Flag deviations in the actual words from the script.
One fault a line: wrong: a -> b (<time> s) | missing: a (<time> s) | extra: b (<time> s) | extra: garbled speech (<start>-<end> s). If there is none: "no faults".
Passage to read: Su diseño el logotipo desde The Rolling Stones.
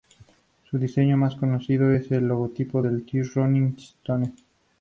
extra: más conocido es (1.1 s)
wrong: desde -> de (2.8 s)